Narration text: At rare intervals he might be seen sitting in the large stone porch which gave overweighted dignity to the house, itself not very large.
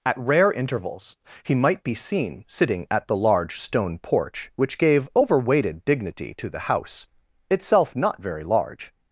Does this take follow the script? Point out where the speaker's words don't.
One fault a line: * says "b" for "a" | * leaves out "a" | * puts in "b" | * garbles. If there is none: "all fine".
* says "at" for "in"